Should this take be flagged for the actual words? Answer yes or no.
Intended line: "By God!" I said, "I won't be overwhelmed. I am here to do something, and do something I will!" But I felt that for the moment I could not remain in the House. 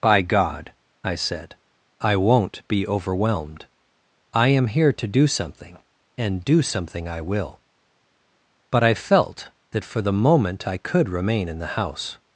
yes